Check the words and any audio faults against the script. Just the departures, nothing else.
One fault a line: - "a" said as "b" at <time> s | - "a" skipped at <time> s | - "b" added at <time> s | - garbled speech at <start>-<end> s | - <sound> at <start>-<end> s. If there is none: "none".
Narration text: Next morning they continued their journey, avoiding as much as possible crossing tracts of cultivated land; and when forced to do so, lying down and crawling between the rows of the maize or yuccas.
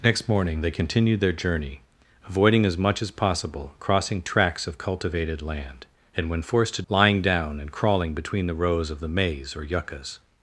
- "do so" skipped at 6.8 s